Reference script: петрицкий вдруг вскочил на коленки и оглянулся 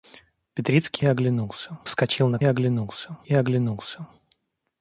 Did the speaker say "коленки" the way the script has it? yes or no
no